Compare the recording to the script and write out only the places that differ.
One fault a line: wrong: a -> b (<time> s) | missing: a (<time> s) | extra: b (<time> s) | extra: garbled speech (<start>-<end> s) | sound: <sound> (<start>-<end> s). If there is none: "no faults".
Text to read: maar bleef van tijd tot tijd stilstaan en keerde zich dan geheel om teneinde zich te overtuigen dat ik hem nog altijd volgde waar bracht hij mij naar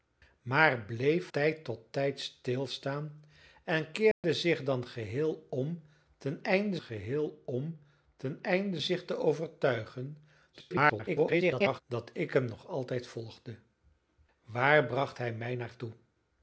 missing: van (1.3 s)
sound: dropout (4.1-4.2 s)
extra: geheel om teneinde (6.8 s)
extra: garbled speech (10.5-11.8 s)